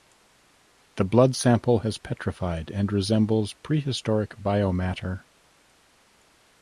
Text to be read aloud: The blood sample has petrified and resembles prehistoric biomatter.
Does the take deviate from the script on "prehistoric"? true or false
false